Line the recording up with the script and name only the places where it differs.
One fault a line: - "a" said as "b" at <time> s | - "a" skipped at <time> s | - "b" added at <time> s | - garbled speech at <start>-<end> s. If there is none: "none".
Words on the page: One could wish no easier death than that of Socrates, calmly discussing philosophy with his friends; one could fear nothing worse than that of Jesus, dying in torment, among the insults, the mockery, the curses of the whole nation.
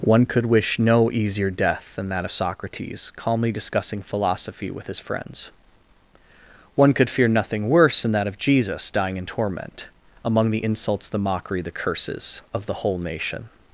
none